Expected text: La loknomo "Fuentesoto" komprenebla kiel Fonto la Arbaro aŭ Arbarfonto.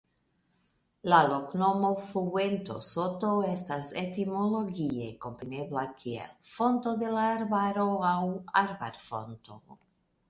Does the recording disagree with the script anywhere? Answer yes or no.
yes